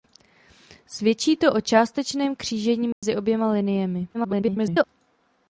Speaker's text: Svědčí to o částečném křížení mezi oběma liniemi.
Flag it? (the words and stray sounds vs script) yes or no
yes